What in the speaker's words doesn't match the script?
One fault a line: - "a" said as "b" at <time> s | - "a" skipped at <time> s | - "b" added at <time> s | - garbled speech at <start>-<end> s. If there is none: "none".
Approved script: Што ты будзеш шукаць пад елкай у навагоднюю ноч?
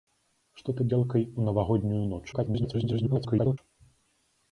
- "будзеш шукаць пад" skipped at 0.8 s
- garbled speech at 2.3-3.6 s